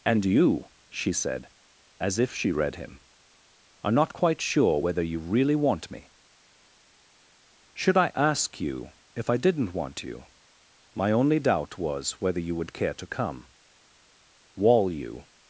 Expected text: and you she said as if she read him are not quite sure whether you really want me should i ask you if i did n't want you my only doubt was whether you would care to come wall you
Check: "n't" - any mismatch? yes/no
no